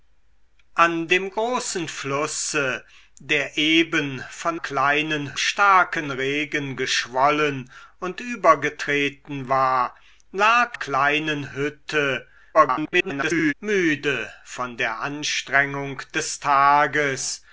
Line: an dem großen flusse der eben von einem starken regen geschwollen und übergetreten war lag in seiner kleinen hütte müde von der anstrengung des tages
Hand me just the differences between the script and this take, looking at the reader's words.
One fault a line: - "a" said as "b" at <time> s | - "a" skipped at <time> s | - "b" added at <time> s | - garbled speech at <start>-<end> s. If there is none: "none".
- "einem" said as "kleinen" at 4.6 s
- "in seiner" skipped at 10.8 s
- garbled speech at 12.5-13.5 s